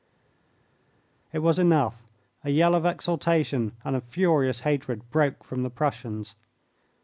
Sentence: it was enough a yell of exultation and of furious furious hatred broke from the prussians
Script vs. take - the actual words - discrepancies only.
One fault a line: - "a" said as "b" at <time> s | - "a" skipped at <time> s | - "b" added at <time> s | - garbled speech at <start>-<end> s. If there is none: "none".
- "furious" skipped at 4.6 s